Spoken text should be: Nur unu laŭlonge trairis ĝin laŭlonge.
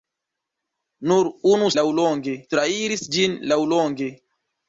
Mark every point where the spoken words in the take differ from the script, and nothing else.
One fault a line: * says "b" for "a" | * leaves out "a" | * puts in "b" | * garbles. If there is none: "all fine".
all fine